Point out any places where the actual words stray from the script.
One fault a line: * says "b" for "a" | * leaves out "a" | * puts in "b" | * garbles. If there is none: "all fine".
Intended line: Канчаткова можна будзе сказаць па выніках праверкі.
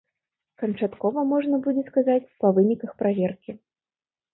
all fine